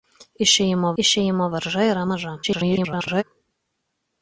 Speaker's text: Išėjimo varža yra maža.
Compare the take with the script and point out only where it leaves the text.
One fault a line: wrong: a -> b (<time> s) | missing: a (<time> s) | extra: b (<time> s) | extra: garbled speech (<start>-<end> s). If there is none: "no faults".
extra: išėjimo (1.0 s)
extra: garbled speech (2.4-3.2 s)